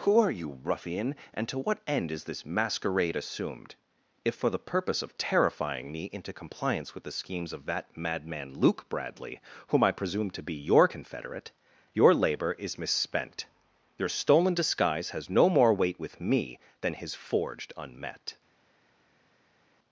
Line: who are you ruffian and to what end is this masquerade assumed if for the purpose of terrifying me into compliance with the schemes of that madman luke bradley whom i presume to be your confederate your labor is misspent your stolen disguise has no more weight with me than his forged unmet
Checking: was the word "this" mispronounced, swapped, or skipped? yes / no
no